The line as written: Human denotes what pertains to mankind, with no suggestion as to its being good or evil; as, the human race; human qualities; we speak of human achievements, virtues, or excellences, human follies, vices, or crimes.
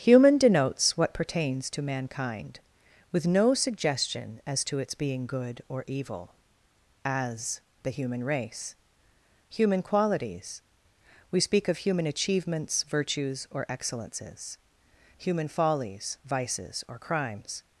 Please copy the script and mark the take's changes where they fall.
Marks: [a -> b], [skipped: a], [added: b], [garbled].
Human denotes what pertains to mankind, with no suggestion as to its being good or evil; as, the human race; human qualities; we speak of human achievements, virtues, or excellences, human follies, vices, or crimes.